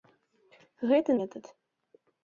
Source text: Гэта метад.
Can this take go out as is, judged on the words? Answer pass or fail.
pass